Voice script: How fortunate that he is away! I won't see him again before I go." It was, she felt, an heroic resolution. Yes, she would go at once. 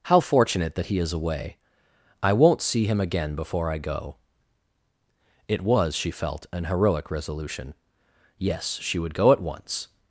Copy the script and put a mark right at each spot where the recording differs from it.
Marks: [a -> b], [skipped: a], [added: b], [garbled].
How fortunate that he is away! I won't see him again before I go." It was, she felt, an heroic resolution. Yes, she would go at once.